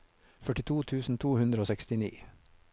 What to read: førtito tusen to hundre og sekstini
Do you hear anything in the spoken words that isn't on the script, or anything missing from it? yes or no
no